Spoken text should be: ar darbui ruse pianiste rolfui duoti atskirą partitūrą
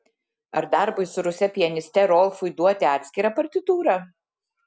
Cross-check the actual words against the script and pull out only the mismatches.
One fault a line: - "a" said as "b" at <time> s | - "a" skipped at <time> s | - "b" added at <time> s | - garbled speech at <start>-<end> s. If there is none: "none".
- "su" added at 1.1 s